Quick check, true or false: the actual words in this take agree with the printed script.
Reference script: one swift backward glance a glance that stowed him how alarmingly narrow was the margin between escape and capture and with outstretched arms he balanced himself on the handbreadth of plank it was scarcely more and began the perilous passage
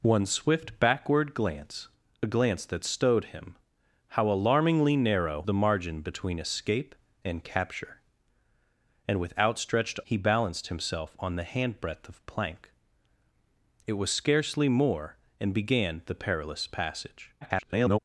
false